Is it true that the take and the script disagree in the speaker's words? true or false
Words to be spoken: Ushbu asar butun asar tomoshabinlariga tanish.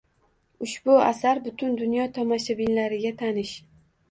true